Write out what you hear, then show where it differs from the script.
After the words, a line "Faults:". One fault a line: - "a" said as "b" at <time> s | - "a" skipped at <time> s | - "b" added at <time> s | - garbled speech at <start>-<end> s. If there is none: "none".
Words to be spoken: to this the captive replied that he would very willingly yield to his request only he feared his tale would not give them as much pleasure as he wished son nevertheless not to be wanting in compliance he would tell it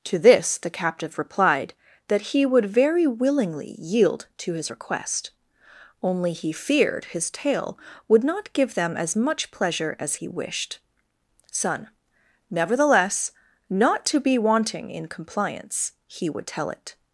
to this the captive replied that he would very willingly yield to his request only he feared his tale would not give them as much pleasure as he wished son nevertheless not to be wanting in compliance he would tell it
Faults:
none